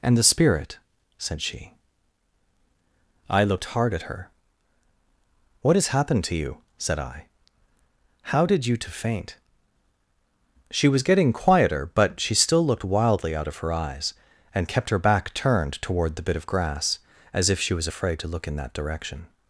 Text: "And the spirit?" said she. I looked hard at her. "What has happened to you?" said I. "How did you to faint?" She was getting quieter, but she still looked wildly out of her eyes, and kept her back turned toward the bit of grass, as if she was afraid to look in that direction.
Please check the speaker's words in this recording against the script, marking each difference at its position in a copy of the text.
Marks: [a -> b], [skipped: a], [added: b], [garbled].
"And the spirit?" said she. I looked hard at her. "What has happened to you?" said I. "How did you to faint?" She was getting quieter, but she still looked wildly out of her eyes, and kept her back turned toward the bit of grass, as if she was afraid to look in that direction.